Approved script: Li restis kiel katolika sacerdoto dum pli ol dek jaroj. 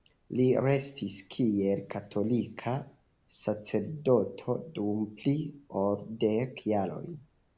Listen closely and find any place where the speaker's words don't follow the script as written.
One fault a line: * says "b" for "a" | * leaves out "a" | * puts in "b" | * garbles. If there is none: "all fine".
all fine